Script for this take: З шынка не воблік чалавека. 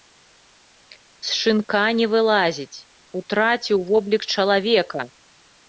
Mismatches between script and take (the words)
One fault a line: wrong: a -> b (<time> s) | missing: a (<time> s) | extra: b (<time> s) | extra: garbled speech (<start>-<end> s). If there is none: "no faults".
extra: вылазіць утраціў (2.1 s)